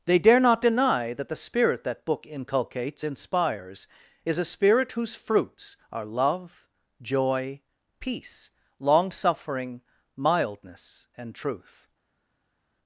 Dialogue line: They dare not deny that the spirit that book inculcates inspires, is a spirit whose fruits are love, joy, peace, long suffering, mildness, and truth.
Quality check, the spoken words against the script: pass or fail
pass